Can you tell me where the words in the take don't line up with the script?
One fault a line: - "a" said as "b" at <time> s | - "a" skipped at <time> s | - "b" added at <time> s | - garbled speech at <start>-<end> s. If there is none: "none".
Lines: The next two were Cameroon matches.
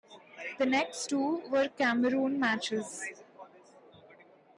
none